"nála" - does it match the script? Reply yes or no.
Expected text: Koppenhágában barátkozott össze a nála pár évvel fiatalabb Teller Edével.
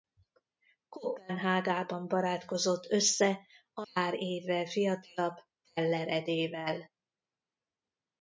no